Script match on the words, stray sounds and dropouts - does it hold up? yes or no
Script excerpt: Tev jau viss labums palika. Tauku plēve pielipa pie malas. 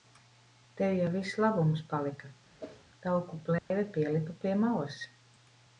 no